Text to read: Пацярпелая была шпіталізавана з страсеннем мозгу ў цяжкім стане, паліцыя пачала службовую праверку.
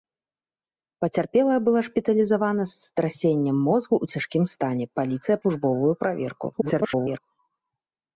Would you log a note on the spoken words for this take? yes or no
yes